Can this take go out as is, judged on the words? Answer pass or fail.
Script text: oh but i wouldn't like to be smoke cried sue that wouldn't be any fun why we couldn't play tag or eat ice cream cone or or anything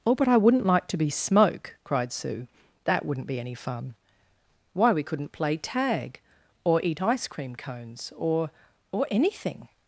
fail